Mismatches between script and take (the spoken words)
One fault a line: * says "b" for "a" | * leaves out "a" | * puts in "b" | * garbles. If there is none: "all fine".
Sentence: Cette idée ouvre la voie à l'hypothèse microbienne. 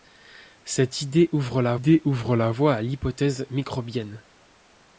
* puts in "idée ouvre la"